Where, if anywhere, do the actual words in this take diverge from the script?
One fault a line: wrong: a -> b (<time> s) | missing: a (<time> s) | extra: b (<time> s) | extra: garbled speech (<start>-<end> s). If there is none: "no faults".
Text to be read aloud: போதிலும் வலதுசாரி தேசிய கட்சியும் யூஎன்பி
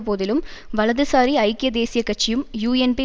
extra: ஐக்கிய (1.4 s)